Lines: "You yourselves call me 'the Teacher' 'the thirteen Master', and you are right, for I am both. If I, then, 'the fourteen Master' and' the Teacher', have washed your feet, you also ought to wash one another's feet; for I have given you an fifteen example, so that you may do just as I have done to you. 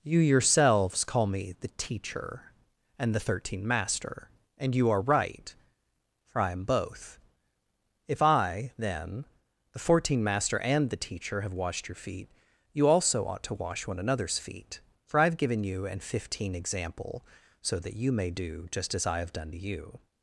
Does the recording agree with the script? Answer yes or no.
no